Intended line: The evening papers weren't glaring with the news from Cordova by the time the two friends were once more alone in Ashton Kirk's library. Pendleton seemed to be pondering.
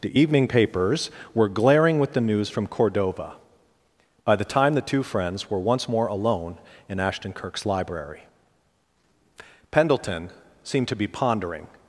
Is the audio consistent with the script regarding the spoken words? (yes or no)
no